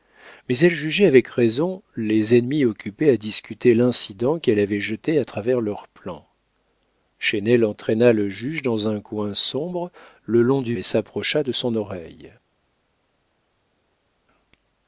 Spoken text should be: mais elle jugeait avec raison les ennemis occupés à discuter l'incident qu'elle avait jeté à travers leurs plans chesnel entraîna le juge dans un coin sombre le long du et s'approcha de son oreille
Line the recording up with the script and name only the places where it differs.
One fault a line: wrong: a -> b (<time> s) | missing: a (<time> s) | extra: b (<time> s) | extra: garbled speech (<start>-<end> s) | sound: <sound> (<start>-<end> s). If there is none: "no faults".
no faults